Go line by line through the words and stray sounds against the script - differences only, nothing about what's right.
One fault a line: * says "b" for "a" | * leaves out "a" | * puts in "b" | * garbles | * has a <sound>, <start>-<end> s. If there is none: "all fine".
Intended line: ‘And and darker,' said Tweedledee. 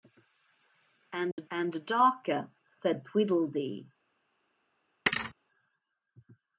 * has a dropout, 1.3-1.4 s
* has a thud, 5.1-5.3 s